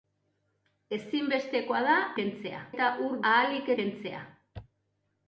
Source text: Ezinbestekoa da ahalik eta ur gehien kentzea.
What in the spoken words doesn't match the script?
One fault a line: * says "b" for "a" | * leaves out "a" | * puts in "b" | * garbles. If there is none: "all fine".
* says "kentzea" for "ahalik"
* says "ahalik" for "gehien"